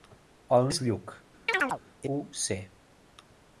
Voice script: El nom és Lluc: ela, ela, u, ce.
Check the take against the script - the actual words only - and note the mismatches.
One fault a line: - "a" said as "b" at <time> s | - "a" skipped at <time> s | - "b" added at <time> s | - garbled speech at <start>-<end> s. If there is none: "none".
- "nom" skipped at 0.6 s
- "ela ela" skipped at 1.1 s